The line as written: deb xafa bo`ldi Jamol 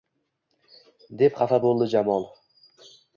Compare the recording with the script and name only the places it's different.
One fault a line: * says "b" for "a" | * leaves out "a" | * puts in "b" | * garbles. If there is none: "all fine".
all fine